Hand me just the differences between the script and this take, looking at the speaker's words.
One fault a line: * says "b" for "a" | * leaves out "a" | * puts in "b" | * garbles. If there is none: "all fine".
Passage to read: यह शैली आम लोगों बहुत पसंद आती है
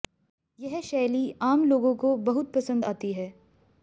* puts in "को"